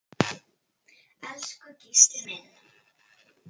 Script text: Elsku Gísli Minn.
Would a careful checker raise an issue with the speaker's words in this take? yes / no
no